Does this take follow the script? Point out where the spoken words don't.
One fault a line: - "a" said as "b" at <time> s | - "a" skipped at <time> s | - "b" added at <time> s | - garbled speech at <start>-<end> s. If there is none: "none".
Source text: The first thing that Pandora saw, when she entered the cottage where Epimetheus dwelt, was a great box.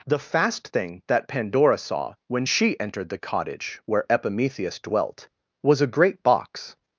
- "first" said as "fast" at 0.2 s